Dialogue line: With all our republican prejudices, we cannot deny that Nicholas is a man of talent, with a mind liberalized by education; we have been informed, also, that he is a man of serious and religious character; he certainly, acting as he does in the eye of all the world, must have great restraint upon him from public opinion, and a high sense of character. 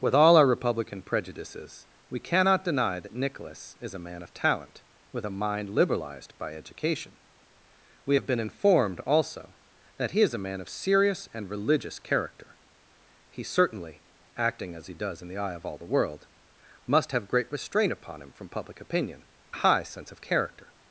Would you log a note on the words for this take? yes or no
yes